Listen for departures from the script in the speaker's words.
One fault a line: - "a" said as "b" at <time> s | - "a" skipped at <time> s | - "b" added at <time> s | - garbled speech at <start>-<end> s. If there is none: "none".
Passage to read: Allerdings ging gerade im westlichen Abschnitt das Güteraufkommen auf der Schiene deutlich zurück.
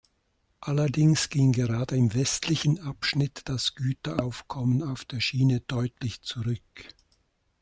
none